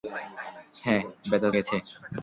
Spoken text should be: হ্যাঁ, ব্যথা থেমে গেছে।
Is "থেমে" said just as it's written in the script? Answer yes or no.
no